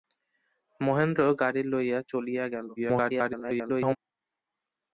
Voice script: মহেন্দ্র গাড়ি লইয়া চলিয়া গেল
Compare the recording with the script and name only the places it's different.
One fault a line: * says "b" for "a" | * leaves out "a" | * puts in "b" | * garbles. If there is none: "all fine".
* garbles